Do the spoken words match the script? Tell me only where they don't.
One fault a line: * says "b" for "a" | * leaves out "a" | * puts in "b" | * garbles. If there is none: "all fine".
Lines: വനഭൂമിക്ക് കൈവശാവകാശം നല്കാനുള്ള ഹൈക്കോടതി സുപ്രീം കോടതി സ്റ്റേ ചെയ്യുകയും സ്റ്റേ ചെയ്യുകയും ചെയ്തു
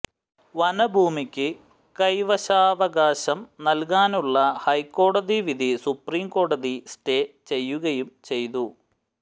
* puts in "വിധി"
* leaves out "സ്റ്റേ ചെയ്യുകയും"